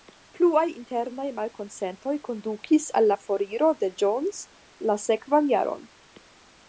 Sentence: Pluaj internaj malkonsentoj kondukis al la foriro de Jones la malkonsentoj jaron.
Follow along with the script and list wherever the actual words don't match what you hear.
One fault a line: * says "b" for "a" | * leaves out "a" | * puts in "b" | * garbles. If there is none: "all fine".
* says "sekvan" for "malkonsentoj"